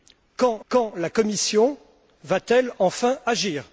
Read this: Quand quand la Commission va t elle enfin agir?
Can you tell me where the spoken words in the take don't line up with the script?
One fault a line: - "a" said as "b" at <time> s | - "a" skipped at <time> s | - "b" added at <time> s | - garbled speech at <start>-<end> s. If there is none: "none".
none